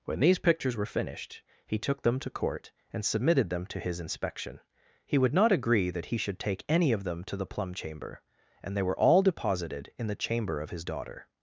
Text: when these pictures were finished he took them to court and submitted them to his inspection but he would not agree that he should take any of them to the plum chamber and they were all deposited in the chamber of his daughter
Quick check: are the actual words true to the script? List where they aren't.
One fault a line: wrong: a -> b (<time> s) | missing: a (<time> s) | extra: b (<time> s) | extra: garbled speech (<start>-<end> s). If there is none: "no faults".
missing: but (4.6 s)